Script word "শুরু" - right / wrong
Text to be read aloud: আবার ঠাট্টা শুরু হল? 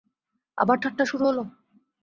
right